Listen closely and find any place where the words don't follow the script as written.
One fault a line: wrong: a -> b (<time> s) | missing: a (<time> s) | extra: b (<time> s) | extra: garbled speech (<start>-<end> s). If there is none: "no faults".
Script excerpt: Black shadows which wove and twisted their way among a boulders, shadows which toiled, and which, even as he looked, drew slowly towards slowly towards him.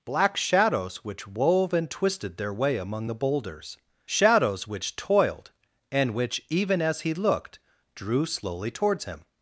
wrong: a -> the (3.1 s)
missing: slowly towards (9.1 s)